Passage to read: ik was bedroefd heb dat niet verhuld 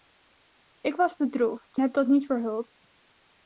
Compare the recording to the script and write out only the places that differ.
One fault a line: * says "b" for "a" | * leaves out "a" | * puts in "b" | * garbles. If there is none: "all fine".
all fine